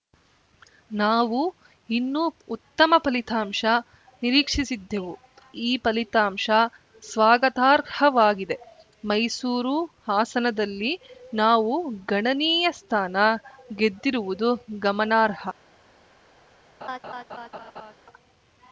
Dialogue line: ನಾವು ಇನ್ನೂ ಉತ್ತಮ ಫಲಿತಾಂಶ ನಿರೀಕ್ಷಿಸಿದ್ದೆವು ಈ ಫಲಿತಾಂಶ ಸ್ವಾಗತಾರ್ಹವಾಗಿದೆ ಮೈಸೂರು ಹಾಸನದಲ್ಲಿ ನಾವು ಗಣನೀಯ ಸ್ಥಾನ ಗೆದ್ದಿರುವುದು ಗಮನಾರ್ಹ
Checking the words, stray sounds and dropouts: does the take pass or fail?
fail